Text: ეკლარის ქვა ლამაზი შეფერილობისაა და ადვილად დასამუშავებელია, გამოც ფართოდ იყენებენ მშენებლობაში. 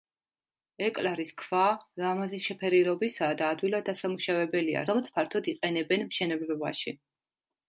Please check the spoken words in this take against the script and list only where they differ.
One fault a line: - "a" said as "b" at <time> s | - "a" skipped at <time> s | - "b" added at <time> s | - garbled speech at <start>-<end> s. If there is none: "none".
none